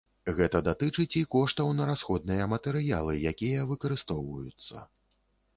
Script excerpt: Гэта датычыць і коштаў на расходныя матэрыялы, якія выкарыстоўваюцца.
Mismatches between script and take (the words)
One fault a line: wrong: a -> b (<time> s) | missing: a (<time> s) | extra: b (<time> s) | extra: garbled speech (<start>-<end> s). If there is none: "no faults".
no faults